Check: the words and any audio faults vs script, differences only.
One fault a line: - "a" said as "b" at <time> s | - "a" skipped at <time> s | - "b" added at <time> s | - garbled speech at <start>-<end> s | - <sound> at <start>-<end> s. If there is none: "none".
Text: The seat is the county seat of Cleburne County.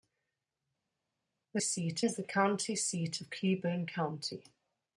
none